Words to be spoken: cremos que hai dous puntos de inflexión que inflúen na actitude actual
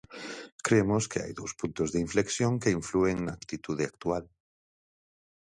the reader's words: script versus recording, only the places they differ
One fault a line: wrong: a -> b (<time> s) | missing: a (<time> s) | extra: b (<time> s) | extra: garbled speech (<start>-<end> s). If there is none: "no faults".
no faults